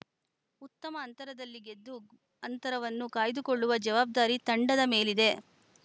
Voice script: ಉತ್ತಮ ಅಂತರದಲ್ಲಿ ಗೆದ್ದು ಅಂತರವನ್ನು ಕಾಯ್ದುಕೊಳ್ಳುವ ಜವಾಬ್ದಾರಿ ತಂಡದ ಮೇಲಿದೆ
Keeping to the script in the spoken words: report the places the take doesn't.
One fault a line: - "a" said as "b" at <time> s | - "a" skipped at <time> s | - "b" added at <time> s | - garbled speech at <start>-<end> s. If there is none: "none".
none